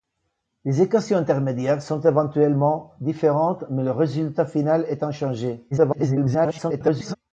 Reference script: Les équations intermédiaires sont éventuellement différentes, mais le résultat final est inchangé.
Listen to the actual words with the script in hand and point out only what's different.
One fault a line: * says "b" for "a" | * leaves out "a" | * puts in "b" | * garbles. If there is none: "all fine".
* garbles